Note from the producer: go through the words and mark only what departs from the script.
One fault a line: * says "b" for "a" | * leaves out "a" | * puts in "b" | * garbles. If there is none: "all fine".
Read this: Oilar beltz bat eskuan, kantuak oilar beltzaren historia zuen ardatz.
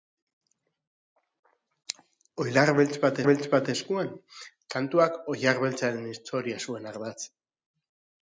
* puts in "beltz bat"